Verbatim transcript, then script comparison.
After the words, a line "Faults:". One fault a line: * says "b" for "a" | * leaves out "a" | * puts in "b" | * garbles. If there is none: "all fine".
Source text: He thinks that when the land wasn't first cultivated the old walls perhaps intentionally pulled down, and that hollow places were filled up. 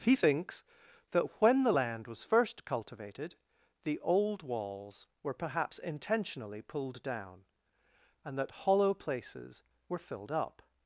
He thinks that when the land was first cultivated the old walls were perhaps intentionally pulled down, and that hollow places were filled up.
Faults:
* says "was" for "wasn't"
* puts in "were"